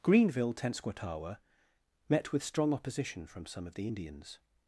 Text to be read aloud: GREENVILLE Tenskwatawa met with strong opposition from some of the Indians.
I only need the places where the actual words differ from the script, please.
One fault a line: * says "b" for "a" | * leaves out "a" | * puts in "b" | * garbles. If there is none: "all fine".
all fine